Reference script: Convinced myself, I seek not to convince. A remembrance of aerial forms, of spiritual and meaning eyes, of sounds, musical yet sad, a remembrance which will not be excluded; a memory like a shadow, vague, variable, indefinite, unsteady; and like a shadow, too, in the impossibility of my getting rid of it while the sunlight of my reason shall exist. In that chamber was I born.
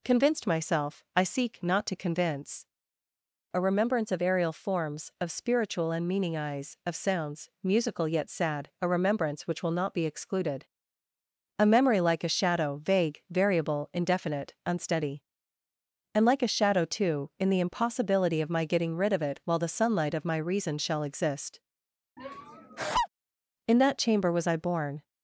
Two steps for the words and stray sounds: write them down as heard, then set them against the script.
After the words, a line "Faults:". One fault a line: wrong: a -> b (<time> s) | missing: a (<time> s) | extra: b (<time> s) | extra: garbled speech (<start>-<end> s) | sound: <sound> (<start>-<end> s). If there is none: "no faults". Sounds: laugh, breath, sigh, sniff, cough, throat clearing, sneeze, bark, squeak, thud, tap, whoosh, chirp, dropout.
Convinced myself, I seek not to convince. A remembrance of aerial forms, of spiritual and meaning eyes, of sounds, musical yet sad, a remembrance which will not be excluded; a memory like a shadow, vague, variable, indefinite, unsteady; and like a shadow, too, in the impossibility of my getting rid of it while the sunlight of my reason shall exist. In that chamber was I born.
Faults:
sound: laugh (22.2-23.1 s)